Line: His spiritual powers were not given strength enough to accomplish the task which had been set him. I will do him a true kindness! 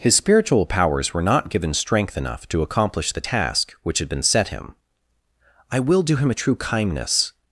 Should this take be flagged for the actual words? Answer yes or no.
no